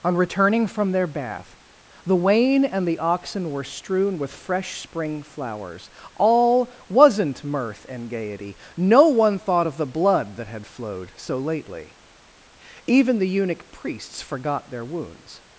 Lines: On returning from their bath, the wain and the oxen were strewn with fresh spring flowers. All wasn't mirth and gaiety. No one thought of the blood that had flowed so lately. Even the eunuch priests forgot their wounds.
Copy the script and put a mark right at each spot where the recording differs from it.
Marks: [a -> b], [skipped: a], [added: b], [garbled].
On returning from their bath, the wain and the oxen were strewn with fresh spring flowers. All wasn't mirth and gaiety. No one thought of the blood that had flowed so lately. Even the eunuch priests forgot their wounds.